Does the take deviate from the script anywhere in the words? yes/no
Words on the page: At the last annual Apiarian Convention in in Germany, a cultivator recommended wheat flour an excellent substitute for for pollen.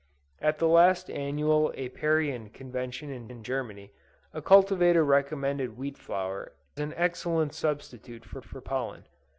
no